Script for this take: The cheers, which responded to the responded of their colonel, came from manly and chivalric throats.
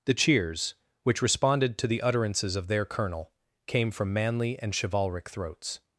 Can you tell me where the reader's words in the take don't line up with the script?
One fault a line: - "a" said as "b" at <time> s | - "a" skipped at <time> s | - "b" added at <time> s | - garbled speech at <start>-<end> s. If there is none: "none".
- "responded" said as "utterances" at 2.0 s